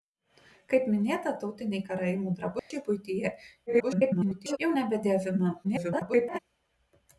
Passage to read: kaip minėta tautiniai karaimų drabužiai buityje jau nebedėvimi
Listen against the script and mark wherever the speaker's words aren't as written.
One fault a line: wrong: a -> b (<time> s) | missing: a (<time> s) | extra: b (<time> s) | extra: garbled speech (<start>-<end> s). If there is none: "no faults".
extra: garbled speech (3.7-4.6 s)
extra: garbled speech (5.6-6.4 s)